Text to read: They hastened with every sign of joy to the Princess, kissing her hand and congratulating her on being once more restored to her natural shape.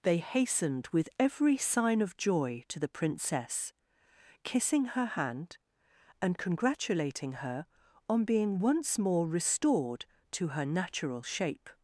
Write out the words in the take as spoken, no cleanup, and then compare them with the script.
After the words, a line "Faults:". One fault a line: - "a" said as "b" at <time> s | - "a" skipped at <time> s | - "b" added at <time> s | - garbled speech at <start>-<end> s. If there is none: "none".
They hastened with every sign of joy to the Princess, kissing her hand and congratulating her on being once more restored to her natural shape.
Faults:
none